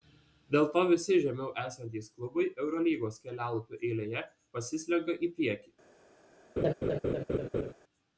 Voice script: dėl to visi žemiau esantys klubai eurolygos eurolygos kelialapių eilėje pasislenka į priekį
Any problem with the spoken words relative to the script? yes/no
yes